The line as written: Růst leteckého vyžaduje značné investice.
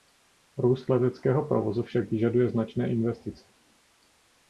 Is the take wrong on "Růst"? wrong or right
right